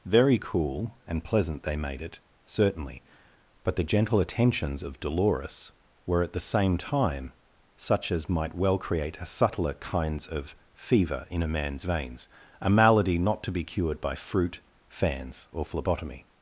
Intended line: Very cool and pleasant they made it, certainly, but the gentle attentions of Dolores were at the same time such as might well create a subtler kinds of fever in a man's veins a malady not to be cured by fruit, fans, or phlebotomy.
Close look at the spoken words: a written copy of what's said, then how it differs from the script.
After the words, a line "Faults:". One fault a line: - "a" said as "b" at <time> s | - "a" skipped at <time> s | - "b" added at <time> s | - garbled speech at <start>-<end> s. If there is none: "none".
Very cool and pleasant they made it, certainly, but the gentle attentions of Dolores were at the same time such as might well create a subtler kinds of fever in a man's veins a malady not to be cured by fruit, fans, or phlebotomy.
Faults:
none